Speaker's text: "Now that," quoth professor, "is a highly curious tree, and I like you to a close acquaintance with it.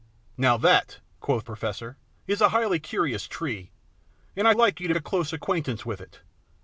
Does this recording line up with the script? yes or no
yes